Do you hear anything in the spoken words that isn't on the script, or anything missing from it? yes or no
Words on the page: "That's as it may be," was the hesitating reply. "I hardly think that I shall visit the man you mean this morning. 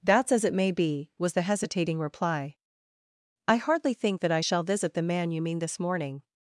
no